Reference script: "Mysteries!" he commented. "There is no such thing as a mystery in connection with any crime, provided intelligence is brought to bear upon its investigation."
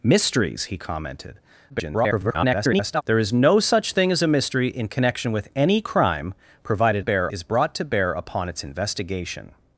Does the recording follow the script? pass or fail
fail